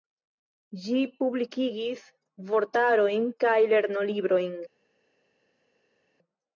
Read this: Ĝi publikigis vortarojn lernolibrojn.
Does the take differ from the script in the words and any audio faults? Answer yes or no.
yes